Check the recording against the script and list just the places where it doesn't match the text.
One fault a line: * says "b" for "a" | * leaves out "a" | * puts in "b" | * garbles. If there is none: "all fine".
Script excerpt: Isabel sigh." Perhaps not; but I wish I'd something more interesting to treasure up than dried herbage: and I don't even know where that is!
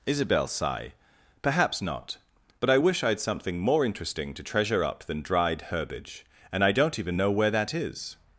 all fine